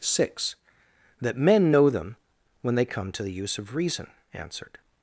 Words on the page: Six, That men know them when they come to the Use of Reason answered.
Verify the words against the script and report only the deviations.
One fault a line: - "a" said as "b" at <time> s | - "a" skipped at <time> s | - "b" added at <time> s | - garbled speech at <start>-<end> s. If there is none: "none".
none